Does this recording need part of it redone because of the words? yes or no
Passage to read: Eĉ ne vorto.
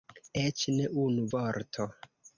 yes